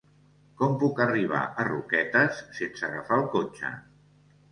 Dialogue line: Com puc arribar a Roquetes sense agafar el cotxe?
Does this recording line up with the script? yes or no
yes